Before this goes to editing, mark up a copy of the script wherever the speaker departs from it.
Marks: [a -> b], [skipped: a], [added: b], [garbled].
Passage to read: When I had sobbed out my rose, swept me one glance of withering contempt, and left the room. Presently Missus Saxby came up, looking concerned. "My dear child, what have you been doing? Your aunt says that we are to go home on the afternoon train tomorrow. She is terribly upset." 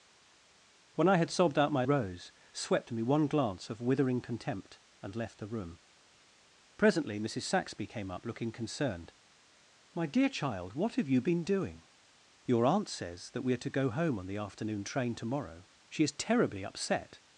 When I had sobbed out my rose, swept me one glance of withering contempt, and left the room. Presently Missus Saxby came up, looking concerned. "My dear child, what have you been doing? Your aunt says that we are to go home on the afternoon train tomorrow. She is terribly upset."